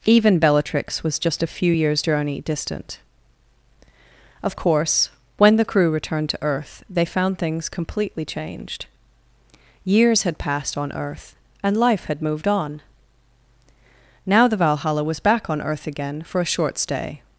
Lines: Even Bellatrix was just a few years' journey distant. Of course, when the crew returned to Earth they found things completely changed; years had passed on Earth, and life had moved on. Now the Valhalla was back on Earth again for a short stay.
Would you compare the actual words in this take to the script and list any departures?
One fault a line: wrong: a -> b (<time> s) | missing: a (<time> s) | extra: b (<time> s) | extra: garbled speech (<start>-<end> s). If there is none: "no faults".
no faults